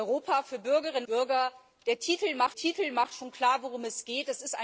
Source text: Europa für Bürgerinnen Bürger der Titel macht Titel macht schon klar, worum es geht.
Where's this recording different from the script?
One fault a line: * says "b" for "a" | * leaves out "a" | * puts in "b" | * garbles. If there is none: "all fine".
all fine